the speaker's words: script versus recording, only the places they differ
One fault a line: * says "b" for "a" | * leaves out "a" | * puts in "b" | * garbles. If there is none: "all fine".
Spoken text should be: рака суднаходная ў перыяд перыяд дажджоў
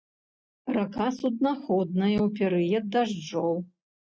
* leaves out "перыяд"